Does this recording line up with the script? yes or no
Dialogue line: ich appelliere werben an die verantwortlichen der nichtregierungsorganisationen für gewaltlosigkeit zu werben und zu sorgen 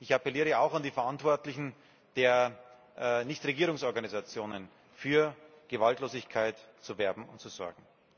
no